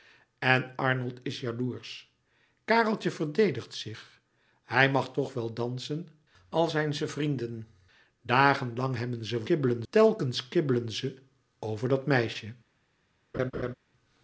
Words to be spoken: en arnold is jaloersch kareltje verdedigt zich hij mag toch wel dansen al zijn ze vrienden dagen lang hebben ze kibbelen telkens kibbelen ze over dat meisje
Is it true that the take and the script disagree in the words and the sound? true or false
true